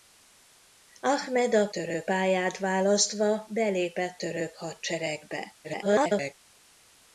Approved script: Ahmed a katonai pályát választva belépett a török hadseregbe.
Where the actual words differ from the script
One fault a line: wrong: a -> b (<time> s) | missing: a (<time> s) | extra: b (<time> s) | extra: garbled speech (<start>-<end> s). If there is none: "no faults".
wrong: katonai -> török (1.7 s)
missing: a (4.2 s)
extra: garbled speech (5.6-6.3 s)